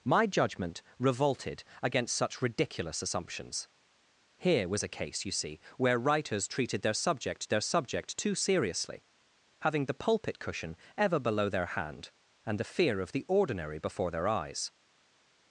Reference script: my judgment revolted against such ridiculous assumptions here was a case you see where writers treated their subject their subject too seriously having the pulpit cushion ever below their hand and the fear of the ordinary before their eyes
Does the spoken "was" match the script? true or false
true